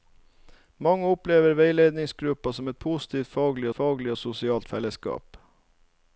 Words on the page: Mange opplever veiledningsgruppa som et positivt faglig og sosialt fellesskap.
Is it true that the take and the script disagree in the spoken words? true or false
true